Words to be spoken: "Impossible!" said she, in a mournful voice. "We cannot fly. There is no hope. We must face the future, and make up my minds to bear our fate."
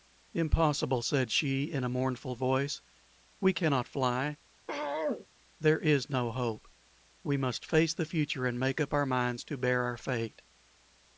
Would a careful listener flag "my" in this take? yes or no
yes